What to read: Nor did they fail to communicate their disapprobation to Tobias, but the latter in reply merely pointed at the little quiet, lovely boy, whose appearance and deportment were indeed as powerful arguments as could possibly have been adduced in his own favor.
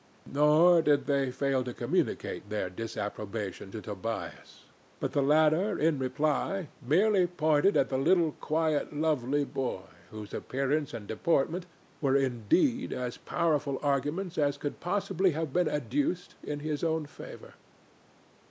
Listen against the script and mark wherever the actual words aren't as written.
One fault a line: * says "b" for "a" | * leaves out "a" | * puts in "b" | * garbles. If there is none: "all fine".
all fine